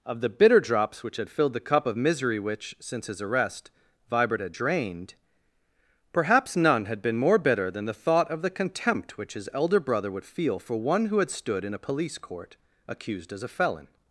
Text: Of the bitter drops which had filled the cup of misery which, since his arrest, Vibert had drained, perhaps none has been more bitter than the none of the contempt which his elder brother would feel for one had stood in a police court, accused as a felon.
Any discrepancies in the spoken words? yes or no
yes